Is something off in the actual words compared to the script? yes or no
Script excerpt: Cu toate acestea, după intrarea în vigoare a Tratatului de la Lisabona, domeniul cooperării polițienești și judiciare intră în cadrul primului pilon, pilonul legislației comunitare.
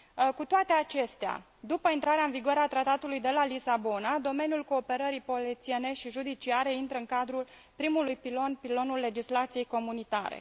no